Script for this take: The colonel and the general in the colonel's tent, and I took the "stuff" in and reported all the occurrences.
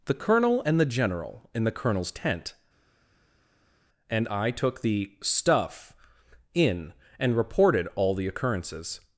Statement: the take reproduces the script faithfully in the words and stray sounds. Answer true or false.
true